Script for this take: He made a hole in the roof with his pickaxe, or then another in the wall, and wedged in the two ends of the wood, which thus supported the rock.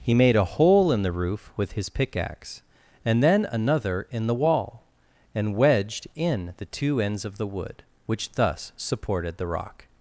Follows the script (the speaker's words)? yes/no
no